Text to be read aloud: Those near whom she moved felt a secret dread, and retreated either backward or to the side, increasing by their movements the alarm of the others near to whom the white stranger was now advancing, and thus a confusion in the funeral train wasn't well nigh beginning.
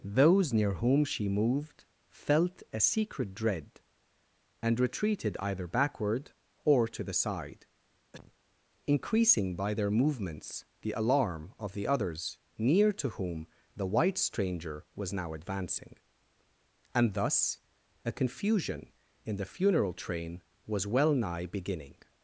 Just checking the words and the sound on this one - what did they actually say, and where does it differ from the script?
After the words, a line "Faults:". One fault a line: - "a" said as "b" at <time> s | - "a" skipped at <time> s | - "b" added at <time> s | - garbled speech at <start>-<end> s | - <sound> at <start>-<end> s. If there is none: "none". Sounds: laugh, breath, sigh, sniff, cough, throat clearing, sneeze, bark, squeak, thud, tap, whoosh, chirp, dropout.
Those near whom she moved felt a secret dread, and retreated either backward or to the side, increasing by their movements the alarm of the others near to whom the white stranger was now advancing, and thus a confusion in the funeral train was well nigh beginning.
Faults:
- cough at 8.1-8.4 s
- "wasn't" said as "was" at 20.7 s